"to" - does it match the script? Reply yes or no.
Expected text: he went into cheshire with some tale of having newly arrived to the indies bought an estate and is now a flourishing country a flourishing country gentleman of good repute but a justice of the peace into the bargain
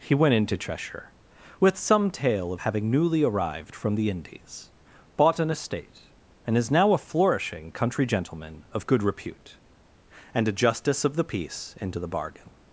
no